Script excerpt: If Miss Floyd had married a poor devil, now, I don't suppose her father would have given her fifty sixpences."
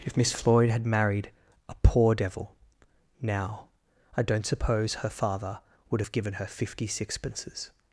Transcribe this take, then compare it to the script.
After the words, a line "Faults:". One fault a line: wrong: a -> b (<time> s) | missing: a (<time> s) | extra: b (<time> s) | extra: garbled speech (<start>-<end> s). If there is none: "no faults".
If Miss Floyd had married a poor devil, now, I don't suppose her father would have given her fifty sixpences."
Faults:
no faults